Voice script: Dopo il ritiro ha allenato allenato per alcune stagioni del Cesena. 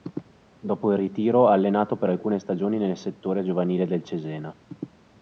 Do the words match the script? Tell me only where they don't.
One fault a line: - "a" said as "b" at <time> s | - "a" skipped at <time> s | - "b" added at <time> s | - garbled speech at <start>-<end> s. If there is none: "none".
- "allenato" skipped at 2.0 s
- "nel settore giovanile" added at 2.8 s